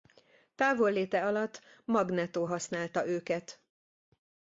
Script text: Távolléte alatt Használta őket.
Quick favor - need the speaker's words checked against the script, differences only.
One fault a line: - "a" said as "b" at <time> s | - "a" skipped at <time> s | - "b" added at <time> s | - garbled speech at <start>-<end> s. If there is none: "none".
- "Magneto" added at 1.9 s